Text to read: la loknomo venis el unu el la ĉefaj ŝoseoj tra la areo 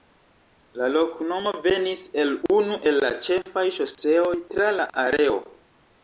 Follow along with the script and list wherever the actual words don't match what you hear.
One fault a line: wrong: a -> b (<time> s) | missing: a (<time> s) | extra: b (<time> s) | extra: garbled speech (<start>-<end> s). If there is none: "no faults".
no faults